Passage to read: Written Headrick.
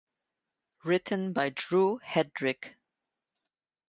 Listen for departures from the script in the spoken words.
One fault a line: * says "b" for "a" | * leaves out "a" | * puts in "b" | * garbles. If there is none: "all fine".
* puts in "by Drew"